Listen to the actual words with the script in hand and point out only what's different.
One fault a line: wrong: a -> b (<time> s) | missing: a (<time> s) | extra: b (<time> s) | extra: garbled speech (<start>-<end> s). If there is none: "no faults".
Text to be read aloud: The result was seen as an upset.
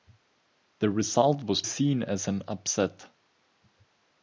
no faults